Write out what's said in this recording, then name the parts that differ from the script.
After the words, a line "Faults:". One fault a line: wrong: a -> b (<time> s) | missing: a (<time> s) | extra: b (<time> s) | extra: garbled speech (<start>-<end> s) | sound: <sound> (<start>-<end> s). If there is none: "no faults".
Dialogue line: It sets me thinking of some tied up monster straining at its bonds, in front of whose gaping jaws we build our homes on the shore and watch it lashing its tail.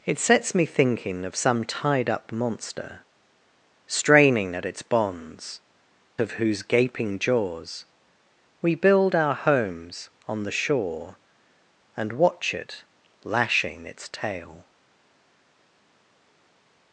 It sets me thinking of some tied up monster straining at its bonds, of whose gaping jaws we build our homes on the shore and watch it lashing its tail.
Faults:
missing: in front (5.6 s)